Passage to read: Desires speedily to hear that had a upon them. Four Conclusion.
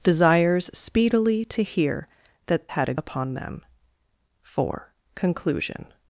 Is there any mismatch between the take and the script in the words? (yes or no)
no